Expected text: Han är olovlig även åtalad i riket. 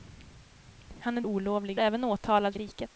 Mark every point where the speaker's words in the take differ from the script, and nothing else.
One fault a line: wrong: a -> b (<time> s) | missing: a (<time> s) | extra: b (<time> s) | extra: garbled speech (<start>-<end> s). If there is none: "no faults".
no faults